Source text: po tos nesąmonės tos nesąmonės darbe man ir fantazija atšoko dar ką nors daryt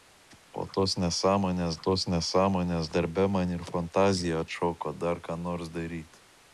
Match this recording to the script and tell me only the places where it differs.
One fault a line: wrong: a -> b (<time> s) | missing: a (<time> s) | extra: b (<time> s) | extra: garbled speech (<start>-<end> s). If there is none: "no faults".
no faults